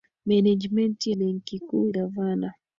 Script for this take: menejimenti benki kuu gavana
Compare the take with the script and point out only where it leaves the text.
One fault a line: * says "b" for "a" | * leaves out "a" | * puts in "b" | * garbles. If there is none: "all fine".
all fine